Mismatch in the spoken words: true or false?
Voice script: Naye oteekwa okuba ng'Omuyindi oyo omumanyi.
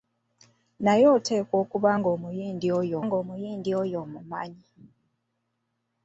true